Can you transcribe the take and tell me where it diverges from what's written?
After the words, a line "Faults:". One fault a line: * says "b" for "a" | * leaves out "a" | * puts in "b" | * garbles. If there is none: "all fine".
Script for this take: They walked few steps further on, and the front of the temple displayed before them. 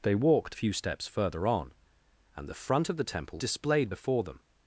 They walked few steps further on, and the front of the temple displayed before them.
Faults:
all fine